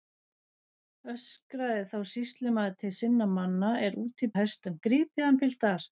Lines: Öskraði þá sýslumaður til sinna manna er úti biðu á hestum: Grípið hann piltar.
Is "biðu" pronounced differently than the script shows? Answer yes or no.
yes